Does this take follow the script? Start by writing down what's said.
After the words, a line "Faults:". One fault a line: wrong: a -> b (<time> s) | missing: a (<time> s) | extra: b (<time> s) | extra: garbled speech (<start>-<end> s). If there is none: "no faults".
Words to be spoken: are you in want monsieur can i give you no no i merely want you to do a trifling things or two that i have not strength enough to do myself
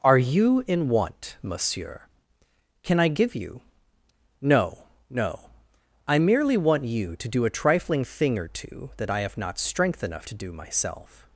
are you in want monsieur can i give you no no i merely want you to do a trifling thing or two that i have not strength enough to do myself
Faults:
wrong: things -> thing (8.0 s)